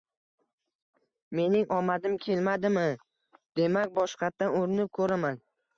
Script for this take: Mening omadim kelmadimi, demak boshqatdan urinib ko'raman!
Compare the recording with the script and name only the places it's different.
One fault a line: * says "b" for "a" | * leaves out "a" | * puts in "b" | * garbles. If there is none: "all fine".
all fine